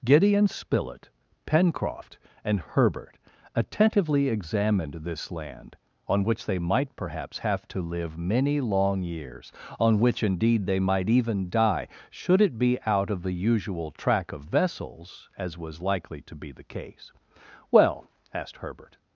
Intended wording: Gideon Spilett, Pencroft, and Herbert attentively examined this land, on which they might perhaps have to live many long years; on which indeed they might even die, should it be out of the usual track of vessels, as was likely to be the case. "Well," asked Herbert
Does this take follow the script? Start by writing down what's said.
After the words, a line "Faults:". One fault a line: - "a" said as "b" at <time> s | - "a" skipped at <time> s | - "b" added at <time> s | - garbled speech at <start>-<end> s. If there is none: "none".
Gideon Spilett, Pencroft, and Herbert attentively examined this land, on which they might perhaps have to live many long years; on which indeed they might even die, should it be out of the usual track of vessels, as was likely to be the case. "Well," asked Herbert
Faults:
none